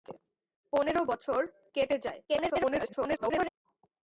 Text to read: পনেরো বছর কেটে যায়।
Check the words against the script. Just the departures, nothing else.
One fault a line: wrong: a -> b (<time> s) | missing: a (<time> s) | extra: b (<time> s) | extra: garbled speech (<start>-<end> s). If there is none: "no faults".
extra: garbled speech (2.3-3.5 s)